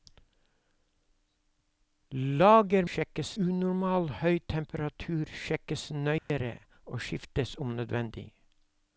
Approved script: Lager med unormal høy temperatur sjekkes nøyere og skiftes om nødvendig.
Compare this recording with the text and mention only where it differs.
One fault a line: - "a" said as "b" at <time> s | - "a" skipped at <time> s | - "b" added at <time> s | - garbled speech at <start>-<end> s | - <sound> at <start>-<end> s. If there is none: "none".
- "med" said as "sjekkes" at 2.9 s
- dropout at 6.2-6.3 s